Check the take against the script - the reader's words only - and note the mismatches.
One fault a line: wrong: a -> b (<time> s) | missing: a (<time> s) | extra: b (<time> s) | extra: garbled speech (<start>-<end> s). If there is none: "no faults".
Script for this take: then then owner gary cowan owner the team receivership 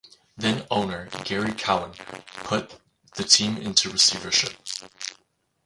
missing: then (0.7 s)
wrong: owner -> put (2.4 s)
extra: into (3.6 s)